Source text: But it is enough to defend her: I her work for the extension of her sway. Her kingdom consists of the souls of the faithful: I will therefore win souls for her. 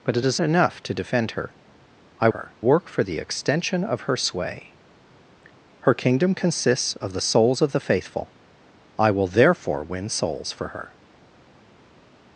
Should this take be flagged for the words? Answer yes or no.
no